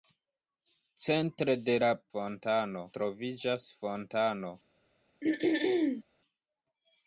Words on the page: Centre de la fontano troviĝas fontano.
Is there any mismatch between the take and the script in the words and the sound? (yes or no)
yes